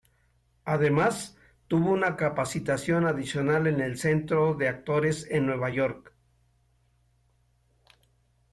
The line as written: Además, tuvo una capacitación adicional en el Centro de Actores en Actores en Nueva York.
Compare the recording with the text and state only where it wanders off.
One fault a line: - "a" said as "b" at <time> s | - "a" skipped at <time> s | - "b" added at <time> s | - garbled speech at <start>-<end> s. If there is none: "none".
- "Actores en" skipped at 5.5 s